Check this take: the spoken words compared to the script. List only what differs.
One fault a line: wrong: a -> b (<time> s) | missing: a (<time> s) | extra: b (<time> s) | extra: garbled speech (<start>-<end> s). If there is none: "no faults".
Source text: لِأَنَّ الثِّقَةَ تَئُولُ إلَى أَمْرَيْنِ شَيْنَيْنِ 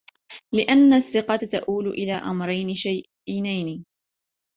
no faults